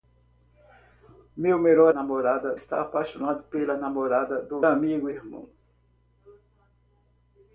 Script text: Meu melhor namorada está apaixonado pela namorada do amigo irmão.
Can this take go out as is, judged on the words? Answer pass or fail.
pass